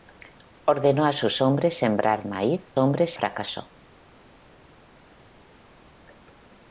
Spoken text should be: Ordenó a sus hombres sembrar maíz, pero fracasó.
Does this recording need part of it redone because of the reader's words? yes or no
yes